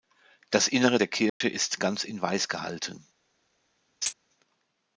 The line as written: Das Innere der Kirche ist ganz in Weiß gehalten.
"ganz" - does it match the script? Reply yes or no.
yes